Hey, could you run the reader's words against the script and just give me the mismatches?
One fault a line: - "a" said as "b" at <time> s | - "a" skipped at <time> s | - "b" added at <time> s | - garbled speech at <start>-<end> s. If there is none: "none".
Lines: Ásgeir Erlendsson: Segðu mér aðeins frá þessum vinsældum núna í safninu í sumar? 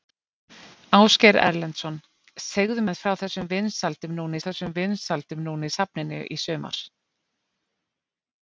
- "mér" skipped at 2.9 s
- "þessum vinsældum núna" added at 4.5 s